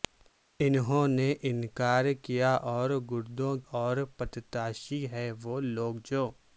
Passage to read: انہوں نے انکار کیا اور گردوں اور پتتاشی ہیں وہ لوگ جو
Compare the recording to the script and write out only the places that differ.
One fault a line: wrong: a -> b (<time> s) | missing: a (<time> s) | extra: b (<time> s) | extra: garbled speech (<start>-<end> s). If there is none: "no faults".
no faults